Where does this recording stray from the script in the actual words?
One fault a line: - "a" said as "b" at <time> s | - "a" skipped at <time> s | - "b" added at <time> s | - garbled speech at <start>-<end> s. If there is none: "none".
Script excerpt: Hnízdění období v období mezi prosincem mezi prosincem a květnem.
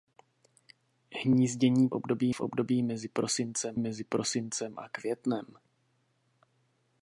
none